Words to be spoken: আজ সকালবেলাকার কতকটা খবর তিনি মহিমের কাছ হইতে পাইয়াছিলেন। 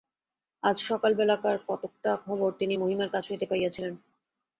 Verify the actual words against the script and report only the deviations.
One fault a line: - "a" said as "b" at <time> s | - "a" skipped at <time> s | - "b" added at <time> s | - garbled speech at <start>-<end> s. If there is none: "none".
none